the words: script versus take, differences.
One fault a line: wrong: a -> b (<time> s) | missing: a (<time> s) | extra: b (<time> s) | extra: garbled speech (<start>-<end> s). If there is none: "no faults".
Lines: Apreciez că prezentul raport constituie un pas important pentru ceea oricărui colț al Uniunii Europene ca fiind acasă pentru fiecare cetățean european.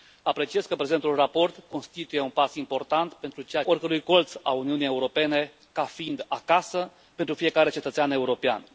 no faults